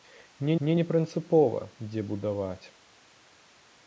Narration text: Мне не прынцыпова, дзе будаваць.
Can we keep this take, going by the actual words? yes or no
no